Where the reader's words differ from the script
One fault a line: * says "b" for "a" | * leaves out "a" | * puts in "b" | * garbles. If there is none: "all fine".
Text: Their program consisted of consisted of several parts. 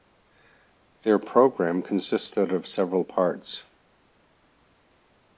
* leaves out "consisted of"